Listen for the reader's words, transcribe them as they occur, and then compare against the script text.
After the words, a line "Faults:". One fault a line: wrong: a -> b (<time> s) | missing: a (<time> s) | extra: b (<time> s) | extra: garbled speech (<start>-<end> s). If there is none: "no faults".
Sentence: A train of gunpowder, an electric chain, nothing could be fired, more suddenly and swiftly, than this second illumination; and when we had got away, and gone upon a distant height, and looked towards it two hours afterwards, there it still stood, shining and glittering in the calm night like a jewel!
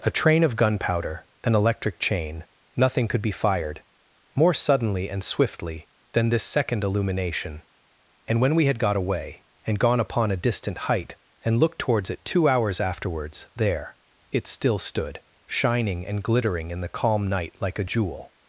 A train of gunpowder, an electric chain, nothing could be fired, more suddenly and swiftly, than this second illumination; and when we had got away, and gone upon a distant height, and looked towards it two hours afterwards, there it still stood, shining and glittering in the calm night like a jewel!
Faults:
no faults